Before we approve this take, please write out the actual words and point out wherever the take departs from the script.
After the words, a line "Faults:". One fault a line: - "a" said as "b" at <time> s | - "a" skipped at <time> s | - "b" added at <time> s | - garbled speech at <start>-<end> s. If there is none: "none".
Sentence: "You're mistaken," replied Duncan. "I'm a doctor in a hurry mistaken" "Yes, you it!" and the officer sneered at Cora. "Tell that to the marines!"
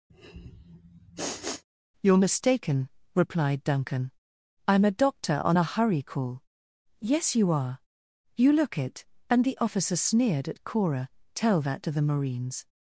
"You're mistaken," replied Duncan. "I'm a doctor on a hurry call" "Yes, you are! You look it!" and the officer sneered at Cora. "Tell that to the marines!"
Faults:
- "in" said as "on" at 5.4 s
- "mistaken" said as "call" at 6.0 s
- "are You look" added at 7.5 s